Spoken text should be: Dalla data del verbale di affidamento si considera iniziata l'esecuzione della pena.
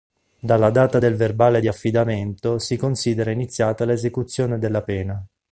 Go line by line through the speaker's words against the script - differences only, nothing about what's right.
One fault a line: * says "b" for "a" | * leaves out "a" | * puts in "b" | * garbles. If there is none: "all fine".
all fine